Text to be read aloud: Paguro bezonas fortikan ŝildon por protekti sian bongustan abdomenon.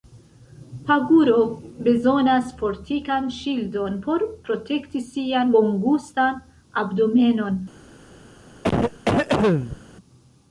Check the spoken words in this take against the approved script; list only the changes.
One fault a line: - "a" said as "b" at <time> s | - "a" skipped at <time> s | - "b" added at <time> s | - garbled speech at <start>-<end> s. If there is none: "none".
none